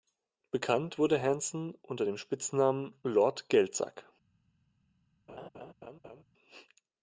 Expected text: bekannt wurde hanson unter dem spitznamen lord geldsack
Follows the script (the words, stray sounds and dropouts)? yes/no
no